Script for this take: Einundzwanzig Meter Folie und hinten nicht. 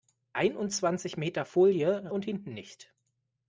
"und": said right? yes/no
yes